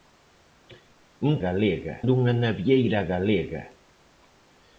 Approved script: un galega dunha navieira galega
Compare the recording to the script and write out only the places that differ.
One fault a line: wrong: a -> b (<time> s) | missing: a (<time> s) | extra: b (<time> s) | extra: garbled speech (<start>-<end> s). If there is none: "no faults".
no faults